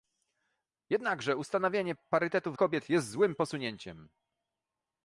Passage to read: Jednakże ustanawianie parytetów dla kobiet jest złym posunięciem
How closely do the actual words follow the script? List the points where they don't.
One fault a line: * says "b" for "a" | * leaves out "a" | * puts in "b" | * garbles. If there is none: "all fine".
* leaves out "dla"